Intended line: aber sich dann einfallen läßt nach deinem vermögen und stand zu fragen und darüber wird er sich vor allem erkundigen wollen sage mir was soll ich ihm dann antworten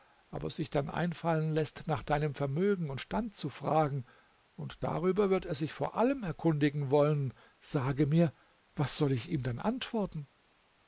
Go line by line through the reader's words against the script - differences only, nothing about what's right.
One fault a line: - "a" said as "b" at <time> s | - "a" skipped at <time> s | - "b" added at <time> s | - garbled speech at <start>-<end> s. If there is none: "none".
none